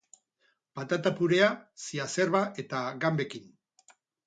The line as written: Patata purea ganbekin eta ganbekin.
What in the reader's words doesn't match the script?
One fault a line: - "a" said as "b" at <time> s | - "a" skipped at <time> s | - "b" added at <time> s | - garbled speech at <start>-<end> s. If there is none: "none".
- "ganbekin" said as "ziazerba" at 1.9 s